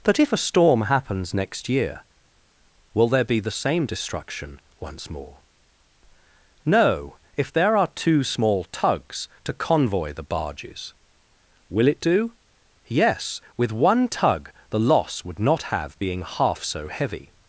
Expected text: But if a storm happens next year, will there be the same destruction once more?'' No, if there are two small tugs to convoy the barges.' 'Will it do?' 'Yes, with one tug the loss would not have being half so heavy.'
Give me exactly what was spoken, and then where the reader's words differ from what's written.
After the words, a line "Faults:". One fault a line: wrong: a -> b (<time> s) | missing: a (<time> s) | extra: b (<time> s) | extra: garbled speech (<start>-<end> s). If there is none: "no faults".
But if a storm happens next year, will there be the same destruction once more?'' No, if there are two small tugs to convoy the barges.' 'Will it do?' 'Yes, with one tug the loss would not have being half so heavy.'
Faults:
no faults